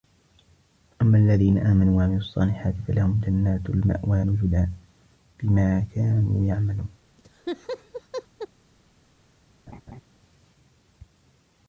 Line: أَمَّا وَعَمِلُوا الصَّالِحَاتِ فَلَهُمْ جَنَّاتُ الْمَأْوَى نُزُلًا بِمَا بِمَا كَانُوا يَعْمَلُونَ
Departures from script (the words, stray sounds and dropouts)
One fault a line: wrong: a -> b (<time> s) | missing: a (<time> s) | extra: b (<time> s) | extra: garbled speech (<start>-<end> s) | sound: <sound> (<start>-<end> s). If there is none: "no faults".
extra: الَّذِينَ آمَنُوا (1.2 s)
missing: بِمَا (5.8 s)
sound: laugh (7.2-8.5 s)
sound: laugh (9.7-10.0 s)